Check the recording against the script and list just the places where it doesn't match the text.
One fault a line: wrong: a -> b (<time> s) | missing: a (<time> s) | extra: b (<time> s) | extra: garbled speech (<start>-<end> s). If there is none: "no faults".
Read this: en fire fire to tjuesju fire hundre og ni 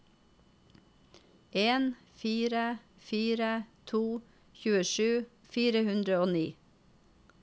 no faults